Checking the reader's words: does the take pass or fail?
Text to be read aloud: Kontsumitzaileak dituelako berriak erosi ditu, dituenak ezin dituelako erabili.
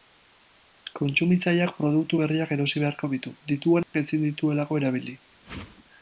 fail